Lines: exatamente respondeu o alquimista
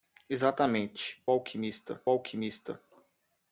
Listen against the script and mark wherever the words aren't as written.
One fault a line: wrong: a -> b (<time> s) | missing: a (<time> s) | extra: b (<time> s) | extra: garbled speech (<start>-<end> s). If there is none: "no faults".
wrong: respondeu -> alquimista (1.3 s)